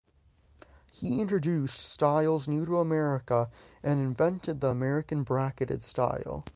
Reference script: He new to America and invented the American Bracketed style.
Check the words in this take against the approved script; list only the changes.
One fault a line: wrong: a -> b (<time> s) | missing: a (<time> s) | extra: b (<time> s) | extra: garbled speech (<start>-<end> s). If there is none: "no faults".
extra: introduced styles (1.2 s)